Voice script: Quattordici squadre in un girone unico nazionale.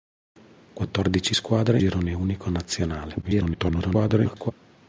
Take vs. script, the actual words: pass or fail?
fail